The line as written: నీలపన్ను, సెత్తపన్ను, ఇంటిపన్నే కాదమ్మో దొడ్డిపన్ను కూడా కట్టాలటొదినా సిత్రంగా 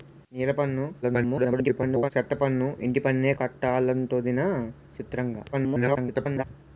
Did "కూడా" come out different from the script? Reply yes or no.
yes